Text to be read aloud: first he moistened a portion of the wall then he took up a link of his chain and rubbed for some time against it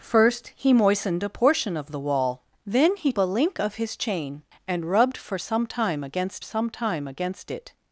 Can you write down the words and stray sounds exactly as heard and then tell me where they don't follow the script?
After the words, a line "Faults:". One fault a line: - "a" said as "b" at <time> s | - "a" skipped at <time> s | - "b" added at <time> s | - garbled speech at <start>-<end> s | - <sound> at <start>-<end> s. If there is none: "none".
first he moistened a portion of the wall then he a link of his chain and rubbed for some time against some time against it
Faults:
- "took up" skipped at 3.1 s
- "some time against" added at 6.4 s